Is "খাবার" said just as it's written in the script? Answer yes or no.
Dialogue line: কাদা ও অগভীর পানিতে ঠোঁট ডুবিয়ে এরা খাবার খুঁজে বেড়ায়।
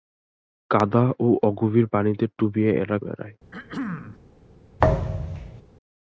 no